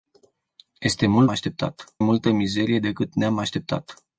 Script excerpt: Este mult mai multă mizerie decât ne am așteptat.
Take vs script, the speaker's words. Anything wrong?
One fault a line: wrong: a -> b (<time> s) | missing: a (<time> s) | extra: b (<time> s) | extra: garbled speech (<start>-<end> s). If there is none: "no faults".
wrong: mai -> așteptat (1.3 s)